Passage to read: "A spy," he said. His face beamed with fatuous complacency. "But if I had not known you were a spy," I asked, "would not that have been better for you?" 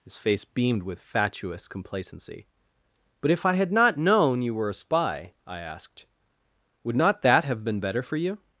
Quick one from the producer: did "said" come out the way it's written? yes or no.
no